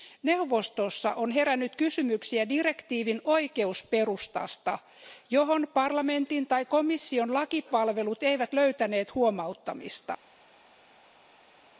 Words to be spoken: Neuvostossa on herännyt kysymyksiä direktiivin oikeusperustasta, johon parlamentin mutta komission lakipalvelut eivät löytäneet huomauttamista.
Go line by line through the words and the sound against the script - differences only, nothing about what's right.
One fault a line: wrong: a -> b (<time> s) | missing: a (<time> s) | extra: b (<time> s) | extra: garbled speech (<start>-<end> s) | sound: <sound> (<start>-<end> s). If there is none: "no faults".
wrong: mutta -> tai (6.5 s)